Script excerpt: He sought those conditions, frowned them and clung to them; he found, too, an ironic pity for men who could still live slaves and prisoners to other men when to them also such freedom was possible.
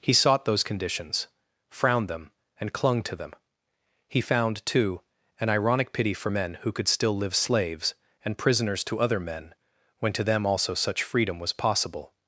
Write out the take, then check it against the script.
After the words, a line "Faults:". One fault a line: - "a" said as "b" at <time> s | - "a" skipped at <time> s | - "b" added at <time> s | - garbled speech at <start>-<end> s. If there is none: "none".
He sought those conditions, frowned them and clung to them; he found, too, an ironic pity for men who could still live slaves and prisoners to other men when to them also such freedom was possible.
Faults:
none